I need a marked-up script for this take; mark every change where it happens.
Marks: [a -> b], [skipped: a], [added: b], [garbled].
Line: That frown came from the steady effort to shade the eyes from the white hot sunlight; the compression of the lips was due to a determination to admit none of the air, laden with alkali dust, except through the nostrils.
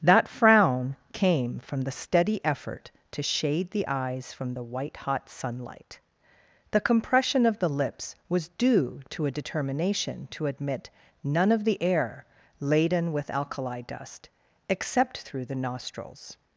That frown came from the steady effort to shade the eyes from the white hot sunlight; the compression of the lips was due to a determination to admit none of the air, laden with alkali dust, except through the nostrils.